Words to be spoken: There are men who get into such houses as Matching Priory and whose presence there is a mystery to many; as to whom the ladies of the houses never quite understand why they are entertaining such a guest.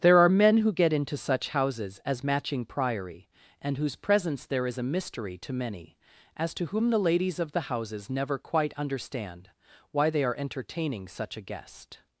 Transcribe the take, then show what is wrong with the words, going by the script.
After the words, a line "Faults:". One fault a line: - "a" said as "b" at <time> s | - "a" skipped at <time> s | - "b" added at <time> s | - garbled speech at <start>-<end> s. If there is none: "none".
There are men who get into such houses as Matching Priory and whose presence there is a mystery to many; as to whom the ladies of the houses never quite understand why they are entertaining such a guest.
Faults:
none